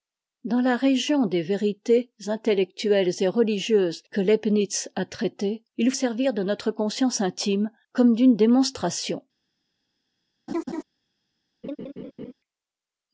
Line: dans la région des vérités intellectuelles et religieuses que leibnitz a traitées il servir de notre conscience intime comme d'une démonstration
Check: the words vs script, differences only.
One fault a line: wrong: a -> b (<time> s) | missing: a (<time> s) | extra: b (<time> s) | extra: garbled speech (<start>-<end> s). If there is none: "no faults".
no faults